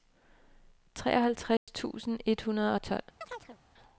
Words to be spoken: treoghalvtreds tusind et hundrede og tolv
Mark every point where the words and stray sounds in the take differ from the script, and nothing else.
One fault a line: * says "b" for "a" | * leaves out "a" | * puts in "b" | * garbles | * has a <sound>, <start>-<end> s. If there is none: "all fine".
* has a dropout, 1.6-1.7 s
* has a chirp, 3.2-3.6 s